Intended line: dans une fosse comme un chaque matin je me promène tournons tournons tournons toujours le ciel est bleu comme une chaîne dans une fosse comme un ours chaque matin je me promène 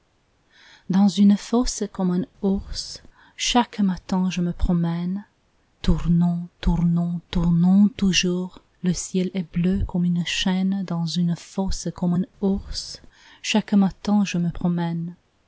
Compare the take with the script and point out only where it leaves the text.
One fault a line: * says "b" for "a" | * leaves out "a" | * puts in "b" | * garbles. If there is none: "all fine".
* puts in "ours"